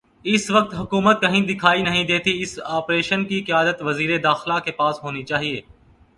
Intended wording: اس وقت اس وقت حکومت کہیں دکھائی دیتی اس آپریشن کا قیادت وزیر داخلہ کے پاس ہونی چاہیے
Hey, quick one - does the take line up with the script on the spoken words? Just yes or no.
no